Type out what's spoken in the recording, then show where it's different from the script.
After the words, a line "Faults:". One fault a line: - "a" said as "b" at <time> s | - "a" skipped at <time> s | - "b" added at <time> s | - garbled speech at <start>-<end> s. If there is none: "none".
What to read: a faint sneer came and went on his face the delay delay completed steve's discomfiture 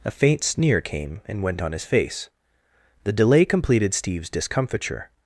a faint sneer came and went on his face the delay completed steve's discomfiture
Faults:
- "delay" skipped at 3.5 s